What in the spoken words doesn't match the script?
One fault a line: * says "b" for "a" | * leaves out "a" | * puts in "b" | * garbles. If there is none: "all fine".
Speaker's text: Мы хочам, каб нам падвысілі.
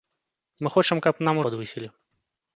all fine